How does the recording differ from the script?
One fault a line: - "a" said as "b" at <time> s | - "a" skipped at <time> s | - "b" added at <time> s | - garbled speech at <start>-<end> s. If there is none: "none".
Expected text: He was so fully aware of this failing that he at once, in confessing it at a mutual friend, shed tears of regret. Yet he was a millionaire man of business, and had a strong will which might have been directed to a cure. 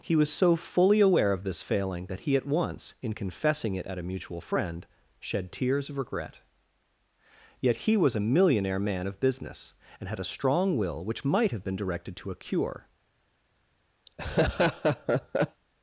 none